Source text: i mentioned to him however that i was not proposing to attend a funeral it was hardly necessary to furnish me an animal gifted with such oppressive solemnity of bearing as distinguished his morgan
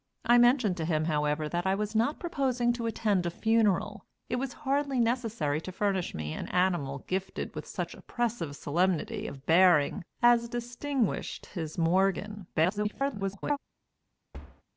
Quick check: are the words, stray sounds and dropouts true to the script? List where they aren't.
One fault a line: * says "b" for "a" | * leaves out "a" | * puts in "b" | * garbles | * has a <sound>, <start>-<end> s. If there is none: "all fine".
* garbles
* has a thud, 14.3-14.6 s